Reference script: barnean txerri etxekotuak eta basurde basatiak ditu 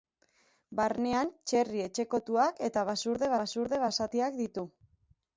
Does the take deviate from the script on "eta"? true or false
false